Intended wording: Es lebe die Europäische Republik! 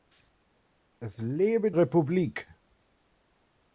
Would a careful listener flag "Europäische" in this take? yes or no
yes